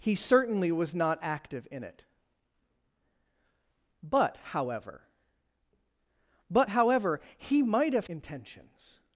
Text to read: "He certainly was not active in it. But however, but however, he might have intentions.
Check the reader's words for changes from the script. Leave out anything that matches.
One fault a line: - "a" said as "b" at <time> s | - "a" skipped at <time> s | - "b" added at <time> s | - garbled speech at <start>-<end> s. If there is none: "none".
none